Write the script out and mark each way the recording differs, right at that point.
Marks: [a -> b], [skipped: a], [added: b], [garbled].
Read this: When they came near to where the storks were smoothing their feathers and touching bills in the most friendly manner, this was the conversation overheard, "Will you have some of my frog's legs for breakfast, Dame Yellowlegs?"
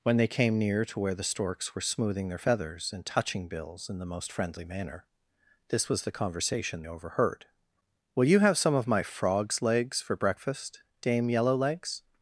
When they came near to where the storks were smoothing their feathers and touching bills in the most friendly manner, this was the conversation overheard, "Will you have some of my frog's legs for breakfast, Dame Yellowlegs?"